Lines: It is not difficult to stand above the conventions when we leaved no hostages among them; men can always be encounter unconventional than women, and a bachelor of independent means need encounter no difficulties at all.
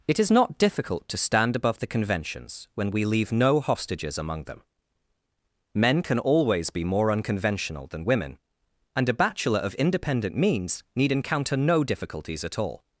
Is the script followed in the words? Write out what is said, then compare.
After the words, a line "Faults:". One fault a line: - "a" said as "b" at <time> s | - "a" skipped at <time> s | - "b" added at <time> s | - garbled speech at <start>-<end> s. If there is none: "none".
It is not difficult to stand above the conventions when we leave no hostages among them; men can always be more unconventional than women, and a bachelor of independent means need encounter no difficulties at all.
Faults:
- "leaved" said as "leave" at 3.0 s
- "encounter" said as "more" at 6.8 s